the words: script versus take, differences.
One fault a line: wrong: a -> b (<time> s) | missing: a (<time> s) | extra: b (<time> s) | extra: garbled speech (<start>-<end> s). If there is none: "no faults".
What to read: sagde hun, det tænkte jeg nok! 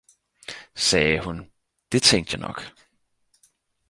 no faults